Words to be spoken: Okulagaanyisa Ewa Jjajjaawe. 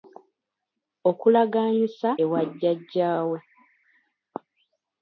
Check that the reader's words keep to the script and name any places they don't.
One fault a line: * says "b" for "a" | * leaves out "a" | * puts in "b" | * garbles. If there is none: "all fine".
all fine